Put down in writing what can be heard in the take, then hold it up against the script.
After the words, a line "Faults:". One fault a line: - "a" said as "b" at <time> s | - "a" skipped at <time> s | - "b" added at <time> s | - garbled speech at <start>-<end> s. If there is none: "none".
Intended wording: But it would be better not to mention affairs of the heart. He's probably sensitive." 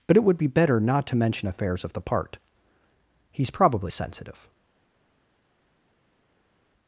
But it would be better not to mention affairs of the part. He's probably sensitive."
Faults:
- "heart" said as "part" at 2.0 s